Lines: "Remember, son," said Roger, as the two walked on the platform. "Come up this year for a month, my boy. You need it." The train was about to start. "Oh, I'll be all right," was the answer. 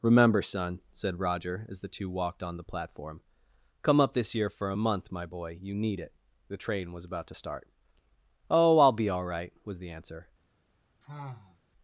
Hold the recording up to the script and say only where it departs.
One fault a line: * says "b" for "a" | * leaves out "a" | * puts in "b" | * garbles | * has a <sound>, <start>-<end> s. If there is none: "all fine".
* has a sigh, 11.0-11.6 s